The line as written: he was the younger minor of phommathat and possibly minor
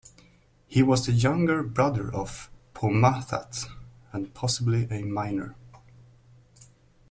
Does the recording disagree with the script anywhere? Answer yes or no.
yes